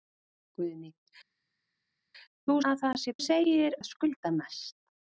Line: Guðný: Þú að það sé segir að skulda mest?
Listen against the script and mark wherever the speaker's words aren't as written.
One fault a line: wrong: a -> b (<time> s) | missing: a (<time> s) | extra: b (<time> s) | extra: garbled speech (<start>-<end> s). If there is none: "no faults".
no faults